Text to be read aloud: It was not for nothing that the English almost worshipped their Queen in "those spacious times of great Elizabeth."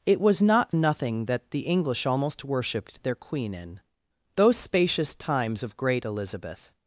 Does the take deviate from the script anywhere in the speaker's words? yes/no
yes